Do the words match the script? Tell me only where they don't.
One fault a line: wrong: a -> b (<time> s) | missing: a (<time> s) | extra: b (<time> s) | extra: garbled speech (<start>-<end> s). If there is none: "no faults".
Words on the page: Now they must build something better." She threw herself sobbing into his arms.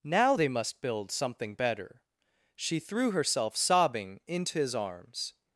no faults